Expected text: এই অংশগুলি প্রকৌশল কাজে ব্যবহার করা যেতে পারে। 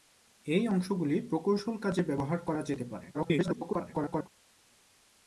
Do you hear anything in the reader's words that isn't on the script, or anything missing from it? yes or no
yes